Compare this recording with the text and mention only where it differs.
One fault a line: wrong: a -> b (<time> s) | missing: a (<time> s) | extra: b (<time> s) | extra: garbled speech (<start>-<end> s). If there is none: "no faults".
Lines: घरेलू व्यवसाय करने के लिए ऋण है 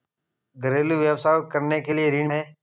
no faults